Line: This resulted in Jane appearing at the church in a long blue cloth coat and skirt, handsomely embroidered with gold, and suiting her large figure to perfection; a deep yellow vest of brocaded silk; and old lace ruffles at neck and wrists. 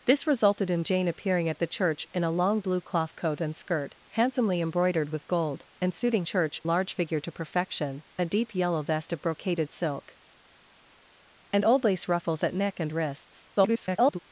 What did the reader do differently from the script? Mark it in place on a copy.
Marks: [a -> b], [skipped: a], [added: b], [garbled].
This resulted in Jane appearing at the church in a long blue cloth coat and skirt, handsomely embroidered with gold, and suiting [her -> church] large figure to perfection; a deep yellow vest of brocaded silk; and old lace ruffles at neck and wrists. [garbled]